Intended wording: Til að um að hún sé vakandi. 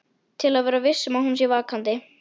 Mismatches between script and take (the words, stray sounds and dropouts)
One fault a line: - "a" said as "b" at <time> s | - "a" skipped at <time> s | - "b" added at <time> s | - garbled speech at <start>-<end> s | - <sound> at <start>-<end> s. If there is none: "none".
- "vera viss" added at 0.7 s